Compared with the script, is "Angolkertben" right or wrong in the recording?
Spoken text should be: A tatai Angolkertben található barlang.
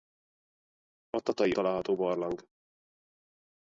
wrong